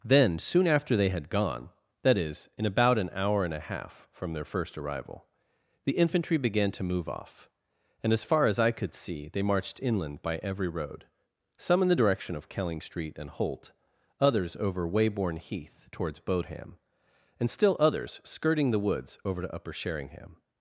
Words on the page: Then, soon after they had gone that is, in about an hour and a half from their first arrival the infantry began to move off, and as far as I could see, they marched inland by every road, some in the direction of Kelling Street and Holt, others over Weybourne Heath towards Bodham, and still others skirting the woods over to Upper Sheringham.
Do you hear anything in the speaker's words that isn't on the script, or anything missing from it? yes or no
no